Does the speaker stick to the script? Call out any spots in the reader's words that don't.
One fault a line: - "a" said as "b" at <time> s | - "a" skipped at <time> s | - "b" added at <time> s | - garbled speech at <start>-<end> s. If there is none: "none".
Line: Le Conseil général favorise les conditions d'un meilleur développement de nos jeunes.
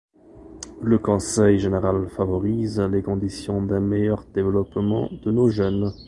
none